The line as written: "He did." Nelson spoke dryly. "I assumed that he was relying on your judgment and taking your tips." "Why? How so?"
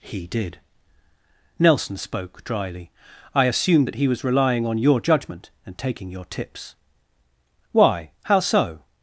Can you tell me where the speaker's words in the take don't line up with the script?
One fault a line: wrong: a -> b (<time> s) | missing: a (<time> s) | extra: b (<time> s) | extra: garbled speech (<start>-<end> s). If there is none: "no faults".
no faults